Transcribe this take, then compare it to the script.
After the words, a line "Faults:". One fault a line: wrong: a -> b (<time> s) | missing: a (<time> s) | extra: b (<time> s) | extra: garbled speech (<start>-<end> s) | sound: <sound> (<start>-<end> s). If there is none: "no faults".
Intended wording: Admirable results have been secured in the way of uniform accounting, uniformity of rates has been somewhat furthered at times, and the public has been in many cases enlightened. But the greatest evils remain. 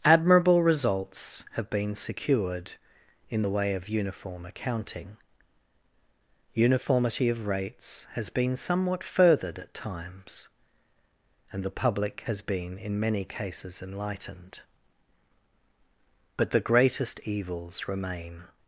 Admirable results have been secured in the way of uniform accounting, uniformity of rates has been somewhat furthered at times, and the public has been in many cases enlightened. But the greatest evils remain.
Faults:
no faults